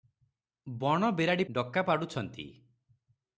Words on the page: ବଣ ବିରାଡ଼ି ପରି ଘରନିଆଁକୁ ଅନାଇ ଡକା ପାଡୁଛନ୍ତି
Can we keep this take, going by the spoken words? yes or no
no